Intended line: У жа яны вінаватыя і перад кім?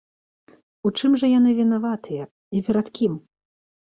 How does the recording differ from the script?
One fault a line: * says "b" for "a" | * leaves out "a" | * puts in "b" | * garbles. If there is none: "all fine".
* puts in "чым"